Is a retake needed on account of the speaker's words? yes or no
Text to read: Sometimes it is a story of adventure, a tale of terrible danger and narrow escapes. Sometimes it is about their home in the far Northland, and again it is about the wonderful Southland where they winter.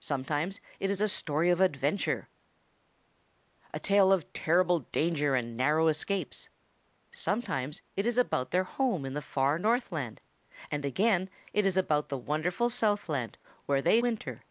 no